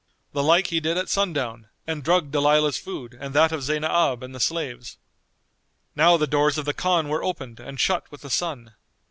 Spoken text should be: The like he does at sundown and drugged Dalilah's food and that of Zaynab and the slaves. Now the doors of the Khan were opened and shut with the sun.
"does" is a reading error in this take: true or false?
true